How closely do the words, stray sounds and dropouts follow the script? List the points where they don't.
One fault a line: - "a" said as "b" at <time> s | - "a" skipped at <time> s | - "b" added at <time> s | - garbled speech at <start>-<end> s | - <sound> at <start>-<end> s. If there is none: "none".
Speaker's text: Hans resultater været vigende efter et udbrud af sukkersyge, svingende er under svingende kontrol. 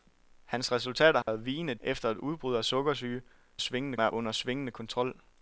- dropout at 1.2-1.3 s